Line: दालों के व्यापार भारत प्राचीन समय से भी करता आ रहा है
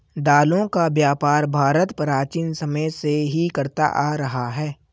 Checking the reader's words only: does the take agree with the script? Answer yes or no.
no